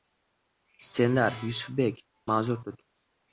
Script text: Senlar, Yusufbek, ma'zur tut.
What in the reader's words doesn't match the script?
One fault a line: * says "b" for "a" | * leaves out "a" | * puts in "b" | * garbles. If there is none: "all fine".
all fine